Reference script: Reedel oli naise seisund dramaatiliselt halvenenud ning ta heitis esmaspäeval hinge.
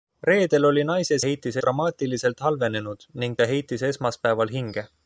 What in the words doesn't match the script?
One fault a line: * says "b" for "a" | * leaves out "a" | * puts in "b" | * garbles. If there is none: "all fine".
* says "heitis" for "seisund"